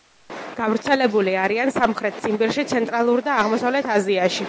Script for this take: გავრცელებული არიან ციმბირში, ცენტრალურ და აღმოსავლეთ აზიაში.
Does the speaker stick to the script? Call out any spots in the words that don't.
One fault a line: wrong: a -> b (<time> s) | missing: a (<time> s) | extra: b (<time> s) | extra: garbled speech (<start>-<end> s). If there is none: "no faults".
extra: სამხრეთ (1.8 s)